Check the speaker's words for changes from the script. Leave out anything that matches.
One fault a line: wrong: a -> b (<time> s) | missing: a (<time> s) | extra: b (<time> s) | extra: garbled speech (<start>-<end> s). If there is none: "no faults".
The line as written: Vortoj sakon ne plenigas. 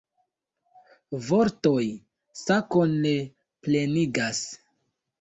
no faults